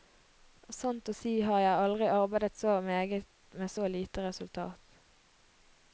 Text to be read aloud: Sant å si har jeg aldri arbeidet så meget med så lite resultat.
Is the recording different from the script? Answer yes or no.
no